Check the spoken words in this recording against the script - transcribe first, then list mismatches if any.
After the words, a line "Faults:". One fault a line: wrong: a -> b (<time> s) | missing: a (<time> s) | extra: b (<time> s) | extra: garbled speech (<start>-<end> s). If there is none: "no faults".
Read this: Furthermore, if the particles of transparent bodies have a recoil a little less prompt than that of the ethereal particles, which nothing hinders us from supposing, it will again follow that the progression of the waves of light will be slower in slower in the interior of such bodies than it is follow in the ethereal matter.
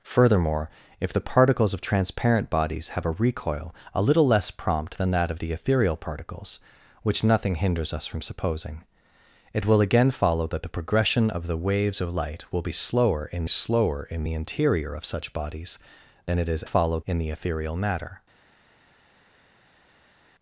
Furthermore, if the particles of transparent bodies have a recoil a little less prompt than that of the ethereal particles, which nothing hinders us from supposing, it will again follow that the progression of the waves of light will be slower in slower in the interior of such bodies than it is follow in the ethereal matter.
Faults:
no faults